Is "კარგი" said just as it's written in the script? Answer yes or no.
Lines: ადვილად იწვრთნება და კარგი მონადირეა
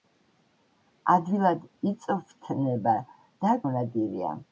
no